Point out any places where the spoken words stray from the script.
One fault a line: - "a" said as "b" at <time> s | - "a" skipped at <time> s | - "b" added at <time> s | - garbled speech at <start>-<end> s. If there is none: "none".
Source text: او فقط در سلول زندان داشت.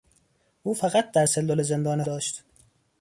none